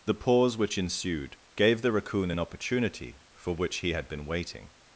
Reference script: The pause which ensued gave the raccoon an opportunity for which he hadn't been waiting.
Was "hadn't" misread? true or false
true